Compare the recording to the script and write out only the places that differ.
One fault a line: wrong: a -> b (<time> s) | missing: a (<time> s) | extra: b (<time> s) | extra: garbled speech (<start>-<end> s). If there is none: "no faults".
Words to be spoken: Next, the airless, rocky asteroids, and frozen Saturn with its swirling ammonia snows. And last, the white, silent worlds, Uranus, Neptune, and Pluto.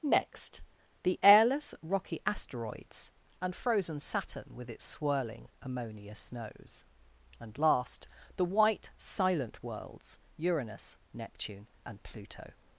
no faults